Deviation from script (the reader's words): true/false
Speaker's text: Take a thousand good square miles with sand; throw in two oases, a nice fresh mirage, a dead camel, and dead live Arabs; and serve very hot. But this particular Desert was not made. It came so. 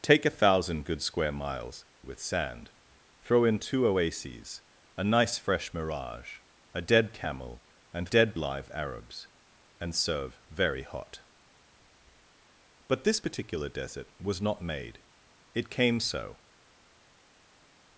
false